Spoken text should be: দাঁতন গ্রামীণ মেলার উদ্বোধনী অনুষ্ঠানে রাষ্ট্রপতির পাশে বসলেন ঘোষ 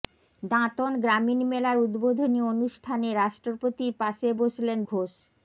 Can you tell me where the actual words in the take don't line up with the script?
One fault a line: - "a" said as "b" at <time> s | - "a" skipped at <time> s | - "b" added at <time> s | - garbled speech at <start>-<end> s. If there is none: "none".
none